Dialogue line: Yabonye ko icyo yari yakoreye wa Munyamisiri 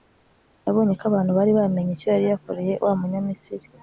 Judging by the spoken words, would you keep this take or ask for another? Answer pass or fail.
fail